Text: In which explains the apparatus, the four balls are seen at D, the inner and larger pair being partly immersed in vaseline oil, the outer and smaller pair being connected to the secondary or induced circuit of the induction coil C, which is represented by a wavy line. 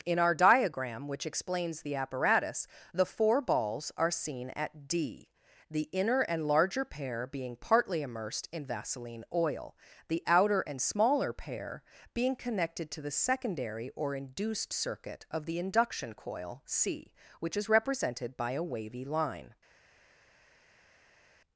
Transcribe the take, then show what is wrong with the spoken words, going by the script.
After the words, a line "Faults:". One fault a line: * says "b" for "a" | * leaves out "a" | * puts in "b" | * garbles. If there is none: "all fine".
In our diagram, which explains the apparatus, the four balls are seen at D, the inner and larger pair being partly immersed in vaseline oil, the outer and smaller pair being connected to the secondary or induced circuit of the induction coil C, which is represented by a wavy line.
Faults:
* puts in "our diagram"